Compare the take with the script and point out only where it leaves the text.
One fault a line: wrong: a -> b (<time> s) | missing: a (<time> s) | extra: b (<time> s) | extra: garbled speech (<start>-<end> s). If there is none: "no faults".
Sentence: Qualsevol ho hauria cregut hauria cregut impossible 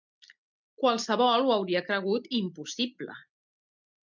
missing: hauria cregut (2.3 s)